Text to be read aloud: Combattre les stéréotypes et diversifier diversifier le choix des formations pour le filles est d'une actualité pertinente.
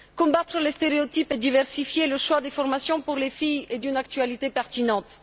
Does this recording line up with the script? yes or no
no